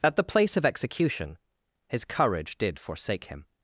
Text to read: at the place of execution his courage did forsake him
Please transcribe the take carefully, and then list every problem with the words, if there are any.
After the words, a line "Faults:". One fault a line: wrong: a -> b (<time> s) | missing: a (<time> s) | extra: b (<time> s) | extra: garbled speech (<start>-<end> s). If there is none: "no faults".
at the place of execution his courage did forsake him
Faults:
no faults